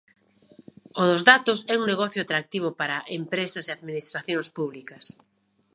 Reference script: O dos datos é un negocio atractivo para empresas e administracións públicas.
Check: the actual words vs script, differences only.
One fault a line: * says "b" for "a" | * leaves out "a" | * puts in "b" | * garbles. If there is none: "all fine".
all fine